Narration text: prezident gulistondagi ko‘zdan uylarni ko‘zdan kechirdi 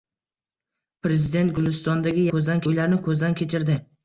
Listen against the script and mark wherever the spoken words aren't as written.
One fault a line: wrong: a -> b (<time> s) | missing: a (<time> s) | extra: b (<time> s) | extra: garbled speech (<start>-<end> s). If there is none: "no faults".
no faults